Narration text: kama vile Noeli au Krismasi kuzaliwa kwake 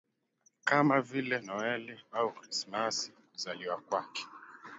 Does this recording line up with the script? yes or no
yes